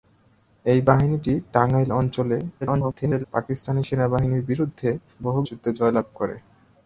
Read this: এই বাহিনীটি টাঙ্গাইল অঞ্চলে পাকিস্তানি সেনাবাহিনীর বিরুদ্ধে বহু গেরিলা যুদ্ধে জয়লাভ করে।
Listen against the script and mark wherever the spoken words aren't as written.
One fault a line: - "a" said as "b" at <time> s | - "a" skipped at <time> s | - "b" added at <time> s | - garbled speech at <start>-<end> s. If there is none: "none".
- garbled speech at 2.6-3.2 s
- "গেরিলা" skipped at 5.4 s